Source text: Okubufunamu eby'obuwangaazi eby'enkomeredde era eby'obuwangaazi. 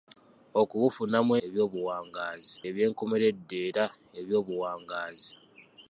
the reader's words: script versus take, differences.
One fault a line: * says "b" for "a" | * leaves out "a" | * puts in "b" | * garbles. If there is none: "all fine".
all fine